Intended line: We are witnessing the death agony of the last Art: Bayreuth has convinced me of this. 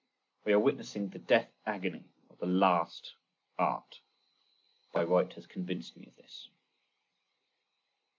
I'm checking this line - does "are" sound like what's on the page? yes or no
yes